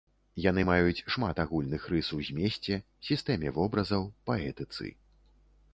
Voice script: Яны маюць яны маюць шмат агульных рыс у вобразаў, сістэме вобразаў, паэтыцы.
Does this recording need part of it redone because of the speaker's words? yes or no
yes